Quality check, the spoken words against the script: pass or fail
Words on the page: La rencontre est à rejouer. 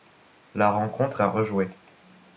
fail